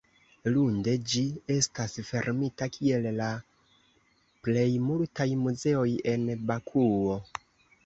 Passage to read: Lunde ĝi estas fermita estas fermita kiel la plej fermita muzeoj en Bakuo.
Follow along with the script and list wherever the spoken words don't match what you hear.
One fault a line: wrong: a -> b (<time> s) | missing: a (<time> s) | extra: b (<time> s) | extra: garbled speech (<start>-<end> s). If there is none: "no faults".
missing: estas fermita (2.7 s)
wrong: fermita -> multaj (4.9 s)